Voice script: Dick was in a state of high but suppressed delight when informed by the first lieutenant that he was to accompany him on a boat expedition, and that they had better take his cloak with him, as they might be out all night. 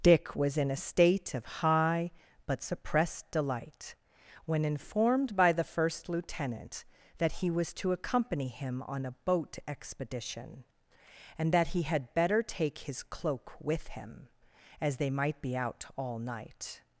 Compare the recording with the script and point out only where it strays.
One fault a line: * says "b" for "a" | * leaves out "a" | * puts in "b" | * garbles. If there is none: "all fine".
* says "he" for "they"